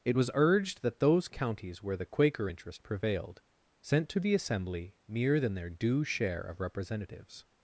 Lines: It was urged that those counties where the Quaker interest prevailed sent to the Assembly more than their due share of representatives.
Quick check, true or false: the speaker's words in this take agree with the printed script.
false